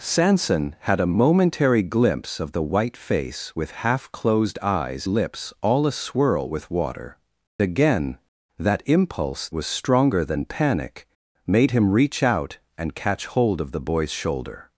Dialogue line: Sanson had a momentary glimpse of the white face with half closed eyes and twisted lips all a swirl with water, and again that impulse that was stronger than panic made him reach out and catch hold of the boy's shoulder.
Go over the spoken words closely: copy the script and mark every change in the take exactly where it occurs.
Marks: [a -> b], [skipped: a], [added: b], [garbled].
Sanson had a momentary glimpse of the white face with half closed eyes [skipped: and twisted] lips all a swirl with water, [skipped: and] again that impulse [skipped: that] was stronger than panic made him reach out and catch hold of the boy's shoulder.